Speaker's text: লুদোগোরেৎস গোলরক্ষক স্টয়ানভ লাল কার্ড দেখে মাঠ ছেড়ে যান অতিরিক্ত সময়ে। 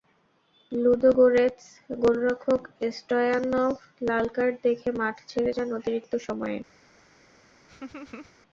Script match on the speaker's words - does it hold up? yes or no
yes